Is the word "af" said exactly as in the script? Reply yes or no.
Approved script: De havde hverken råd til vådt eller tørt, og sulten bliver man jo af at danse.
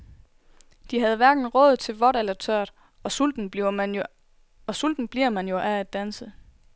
yes